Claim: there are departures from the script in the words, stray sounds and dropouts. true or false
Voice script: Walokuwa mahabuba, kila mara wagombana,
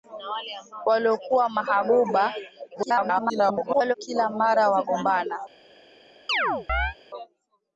true